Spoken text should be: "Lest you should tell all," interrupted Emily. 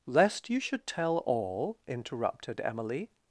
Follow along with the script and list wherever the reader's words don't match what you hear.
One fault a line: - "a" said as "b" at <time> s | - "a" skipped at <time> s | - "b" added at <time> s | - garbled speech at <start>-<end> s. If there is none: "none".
none